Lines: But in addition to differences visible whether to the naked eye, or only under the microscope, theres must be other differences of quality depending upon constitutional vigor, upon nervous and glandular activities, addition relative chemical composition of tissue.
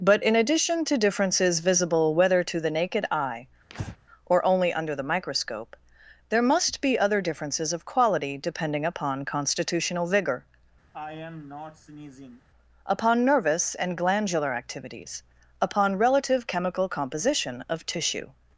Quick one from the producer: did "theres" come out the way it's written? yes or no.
no